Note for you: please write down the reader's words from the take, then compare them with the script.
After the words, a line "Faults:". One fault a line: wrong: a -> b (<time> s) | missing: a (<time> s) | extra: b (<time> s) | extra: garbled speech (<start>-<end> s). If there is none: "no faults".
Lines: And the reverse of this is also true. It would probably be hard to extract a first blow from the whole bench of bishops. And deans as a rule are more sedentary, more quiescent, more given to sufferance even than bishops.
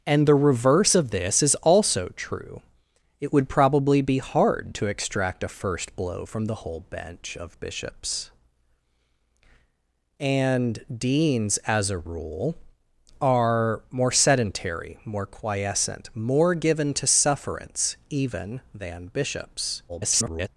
And the reverse of this is also true. It would probably be hard to extract a first blow from the whole bench of bishops. And deans as a rule are more sedentary, more quiescent, more given to sufferance even than bishops. [garbled]
Faults:
extra: garbled speech (19.9-20.5 s)